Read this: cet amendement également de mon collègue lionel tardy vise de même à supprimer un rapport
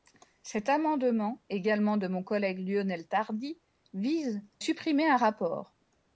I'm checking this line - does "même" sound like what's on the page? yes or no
no